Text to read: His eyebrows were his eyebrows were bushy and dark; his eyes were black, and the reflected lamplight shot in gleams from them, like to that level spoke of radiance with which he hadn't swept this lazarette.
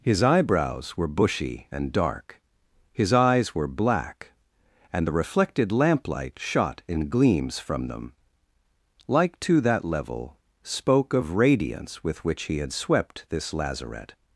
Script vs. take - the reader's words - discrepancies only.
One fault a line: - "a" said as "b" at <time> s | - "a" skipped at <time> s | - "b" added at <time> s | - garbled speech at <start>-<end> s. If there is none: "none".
- "his eyebrows were" skipped at 1.1 s
- "hadn't" said as "had" at 12.6 s